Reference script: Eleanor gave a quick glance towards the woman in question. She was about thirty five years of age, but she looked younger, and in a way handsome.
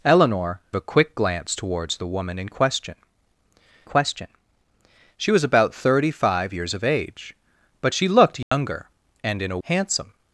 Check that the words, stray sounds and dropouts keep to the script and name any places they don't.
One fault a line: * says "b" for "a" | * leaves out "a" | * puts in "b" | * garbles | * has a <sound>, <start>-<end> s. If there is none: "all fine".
* leaves out "gave"
* puts in "question"
* has a dropout, 8.4-8.5 s
* leaves out "way"